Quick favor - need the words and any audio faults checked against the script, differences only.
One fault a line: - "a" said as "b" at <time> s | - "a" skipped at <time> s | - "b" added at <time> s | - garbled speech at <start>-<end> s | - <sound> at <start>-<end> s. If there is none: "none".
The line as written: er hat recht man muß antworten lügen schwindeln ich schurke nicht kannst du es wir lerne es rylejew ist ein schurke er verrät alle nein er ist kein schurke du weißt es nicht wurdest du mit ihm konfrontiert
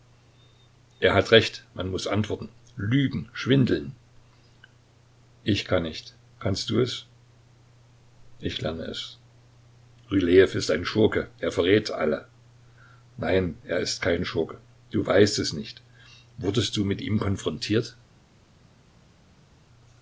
- "schurke" said as "kann" at 5.7 s
- "wir" said as "ich" at 8.4 s